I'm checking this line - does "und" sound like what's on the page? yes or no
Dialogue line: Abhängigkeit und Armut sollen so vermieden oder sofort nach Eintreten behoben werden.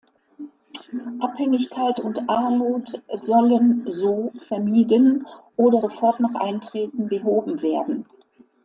yes